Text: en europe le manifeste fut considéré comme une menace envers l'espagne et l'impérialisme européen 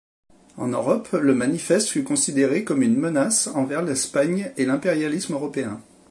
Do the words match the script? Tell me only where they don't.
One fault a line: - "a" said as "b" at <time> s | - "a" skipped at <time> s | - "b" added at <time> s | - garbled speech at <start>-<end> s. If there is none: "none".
none